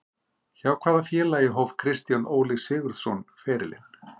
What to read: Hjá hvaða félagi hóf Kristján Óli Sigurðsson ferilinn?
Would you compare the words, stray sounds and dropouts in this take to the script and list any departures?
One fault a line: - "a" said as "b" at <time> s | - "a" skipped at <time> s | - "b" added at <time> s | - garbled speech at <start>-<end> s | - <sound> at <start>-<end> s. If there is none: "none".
none